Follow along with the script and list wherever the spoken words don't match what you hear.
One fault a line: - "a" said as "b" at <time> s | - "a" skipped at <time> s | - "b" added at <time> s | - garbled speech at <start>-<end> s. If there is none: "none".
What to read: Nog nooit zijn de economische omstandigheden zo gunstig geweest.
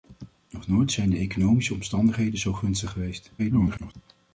- garbled speech at 3.4-3.9 s